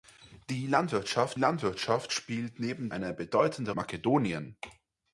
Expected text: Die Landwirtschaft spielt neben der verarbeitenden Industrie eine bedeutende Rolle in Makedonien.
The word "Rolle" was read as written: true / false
false